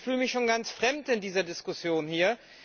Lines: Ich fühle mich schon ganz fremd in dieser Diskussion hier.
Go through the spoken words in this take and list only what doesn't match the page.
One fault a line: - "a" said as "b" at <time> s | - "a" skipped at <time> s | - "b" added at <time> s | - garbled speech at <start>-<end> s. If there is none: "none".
none